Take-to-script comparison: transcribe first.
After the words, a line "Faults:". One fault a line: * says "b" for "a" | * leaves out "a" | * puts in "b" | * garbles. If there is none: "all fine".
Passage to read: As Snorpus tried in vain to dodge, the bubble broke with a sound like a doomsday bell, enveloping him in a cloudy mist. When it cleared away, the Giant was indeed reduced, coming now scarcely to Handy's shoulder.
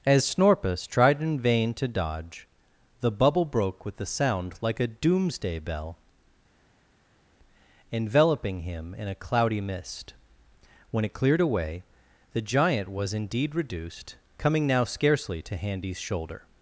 As Snorpus tried in vain to dodge, the bubble broke with a sound like a doomsday bell, enveloping him in a cloudy mist. When it cleared away, the Giant was indeed reduced, coming now scarcely to Handy's shoulder.
Faults:
all fine